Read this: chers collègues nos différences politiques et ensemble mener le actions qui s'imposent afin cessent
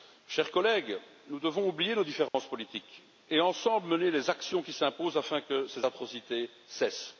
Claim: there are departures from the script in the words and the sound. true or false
true